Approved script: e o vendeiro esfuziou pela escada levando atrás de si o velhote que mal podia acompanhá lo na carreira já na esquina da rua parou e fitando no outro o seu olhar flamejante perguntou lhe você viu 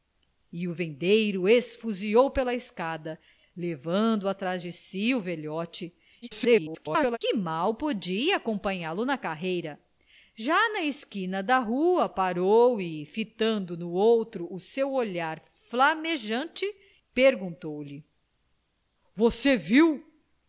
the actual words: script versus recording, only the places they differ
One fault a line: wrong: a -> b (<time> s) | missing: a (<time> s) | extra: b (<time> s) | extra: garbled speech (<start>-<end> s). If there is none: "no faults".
extra: garbled speech (6.2-7.2 s)